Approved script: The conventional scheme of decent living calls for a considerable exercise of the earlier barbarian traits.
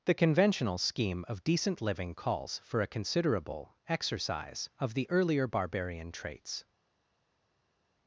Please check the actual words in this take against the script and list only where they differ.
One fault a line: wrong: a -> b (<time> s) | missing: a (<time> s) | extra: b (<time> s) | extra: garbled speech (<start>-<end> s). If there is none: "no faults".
no faults